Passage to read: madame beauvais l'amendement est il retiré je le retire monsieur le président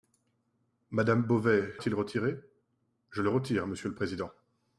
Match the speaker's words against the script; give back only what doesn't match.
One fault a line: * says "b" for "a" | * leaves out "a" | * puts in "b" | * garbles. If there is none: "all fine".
* leaves out "l'amendement"